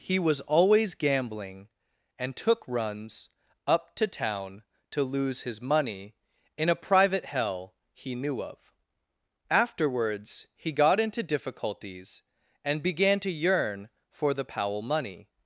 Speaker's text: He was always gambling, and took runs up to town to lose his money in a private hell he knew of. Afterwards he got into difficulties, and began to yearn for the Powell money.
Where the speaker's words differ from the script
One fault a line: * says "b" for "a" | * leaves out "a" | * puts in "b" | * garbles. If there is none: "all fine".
all fine